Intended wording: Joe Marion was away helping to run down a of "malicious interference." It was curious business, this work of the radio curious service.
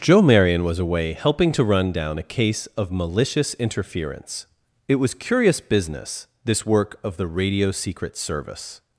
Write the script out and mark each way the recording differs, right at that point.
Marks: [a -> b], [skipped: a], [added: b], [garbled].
Joe Marion was away helping to run down a [added: case] of "malicious interference." It was curious business, this work of the radio [curious -> secret] service.